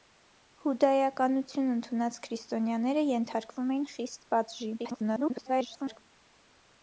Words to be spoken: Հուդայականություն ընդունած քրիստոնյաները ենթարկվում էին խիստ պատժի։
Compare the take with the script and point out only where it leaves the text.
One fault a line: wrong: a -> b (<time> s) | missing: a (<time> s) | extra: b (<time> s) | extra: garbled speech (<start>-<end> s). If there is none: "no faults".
extra: garbled speech (4.8-6.0 s)